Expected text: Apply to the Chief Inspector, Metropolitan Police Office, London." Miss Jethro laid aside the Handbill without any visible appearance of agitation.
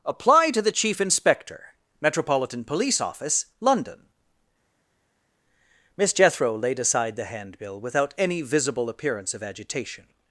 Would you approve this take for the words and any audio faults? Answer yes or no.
yes